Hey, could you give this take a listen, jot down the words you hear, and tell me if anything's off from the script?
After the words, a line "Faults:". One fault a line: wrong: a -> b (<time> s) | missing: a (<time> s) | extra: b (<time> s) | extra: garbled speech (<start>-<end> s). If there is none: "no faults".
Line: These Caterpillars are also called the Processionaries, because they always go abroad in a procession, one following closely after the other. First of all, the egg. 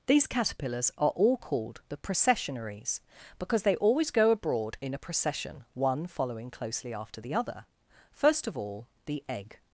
These Caterpillars are all called the Processionaries, because they always go abroad in a procession, one following closely after the other. First of all, the egg.
Faults:
wrong: also -> all (1.1 s)